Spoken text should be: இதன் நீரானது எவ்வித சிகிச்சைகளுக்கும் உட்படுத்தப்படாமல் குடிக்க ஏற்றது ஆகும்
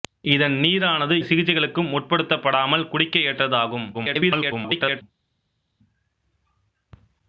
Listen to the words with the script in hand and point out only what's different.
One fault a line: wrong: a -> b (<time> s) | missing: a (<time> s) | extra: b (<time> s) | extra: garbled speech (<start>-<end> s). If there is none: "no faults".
missing: எவ்வித (1.1 s)
extra: garbled speech (3.9-5.0 s)